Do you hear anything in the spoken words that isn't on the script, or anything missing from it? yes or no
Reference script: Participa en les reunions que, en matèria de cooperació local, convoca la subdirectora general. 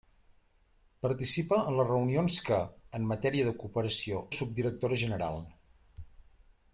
yes